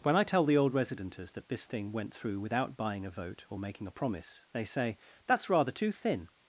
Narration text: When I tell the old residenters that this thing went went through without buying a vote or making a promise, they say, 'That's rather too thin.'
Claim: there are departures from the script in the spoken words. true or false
true